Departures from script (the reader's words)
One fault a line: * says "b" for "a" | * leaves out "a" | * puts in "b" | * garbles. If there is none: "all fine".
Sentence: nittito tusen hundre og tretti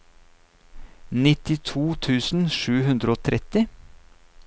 * puts in "sju"